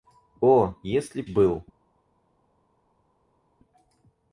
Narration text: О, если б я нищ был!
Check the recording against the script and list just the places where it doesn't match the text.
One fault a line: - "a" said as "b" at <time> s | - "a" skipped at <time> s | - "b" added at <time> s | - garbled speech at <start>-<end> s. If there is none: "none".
- "я нищ" skipped at 1.2 s